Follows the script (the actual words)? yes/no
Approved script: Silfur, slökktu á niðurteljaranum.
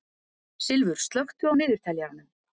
yes